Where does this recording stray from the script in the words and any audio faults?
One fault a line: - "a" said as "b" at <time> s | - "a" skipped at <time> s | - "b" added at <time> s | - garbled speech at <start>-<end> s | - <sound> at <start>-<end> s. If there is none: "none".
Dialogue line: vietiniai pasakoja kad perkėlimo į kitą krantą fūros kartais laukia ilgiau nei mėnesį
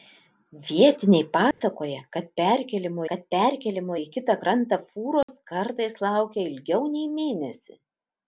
- dropout at 1.5-1.6 s
- "kad perkėlimo" added at 3.1 s
- dropout at 5.2-5.3 s